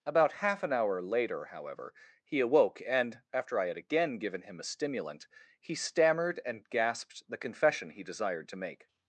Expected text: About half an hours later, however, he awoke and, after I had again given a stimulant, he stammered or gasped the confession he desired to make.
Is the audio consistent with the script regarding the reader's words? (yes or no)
no